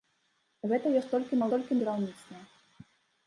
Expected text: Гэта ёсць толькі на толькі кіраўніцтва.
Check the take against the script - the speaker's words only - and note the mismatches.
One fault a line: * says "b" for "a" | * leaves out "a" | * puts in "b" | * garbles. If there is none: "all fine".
all fine